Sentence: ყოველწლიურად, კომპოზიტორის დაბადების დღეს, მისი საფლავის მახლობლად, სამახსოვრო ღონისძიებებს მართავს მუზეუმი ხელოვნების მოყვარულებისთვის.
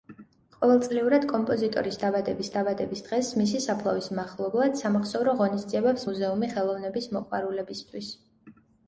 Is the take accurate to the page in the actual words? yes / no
no